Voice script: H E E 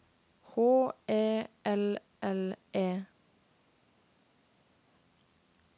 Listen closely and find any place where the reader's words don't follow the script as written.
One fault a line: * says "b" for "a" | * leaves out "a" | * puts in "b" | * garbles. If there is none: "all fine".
* puts in "L L"